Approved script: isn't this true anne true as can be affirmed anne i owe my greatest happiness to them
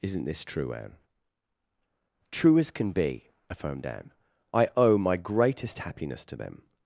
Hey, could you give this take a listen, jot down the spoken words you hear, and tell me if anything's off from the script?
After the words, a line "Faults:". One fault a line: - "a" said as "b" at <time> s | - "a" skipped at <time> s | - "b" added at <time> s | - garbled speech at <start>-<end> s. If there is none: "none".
isn't this true anne true as can be affirmed anne i owe my greatest happiness to them
Faults:
none